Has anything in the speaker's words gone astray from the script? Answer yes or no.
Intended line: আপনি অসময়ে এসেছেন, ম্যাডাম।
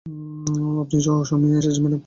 no